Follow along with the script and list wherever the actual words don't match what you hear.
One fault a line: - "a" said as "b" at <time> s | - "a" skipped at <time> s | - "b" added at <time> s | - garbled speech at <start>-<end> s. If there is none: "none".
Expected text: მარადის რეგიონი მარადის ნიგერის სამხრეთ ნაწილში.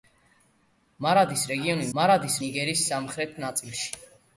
none